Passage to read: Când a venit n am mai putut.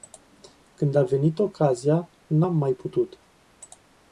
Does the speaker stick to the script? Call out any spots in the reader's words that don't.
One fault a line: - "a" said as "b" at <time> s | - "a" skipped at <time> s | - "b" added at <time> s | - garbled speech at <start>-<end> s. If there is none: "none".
- "ocazia" added at 1.4 s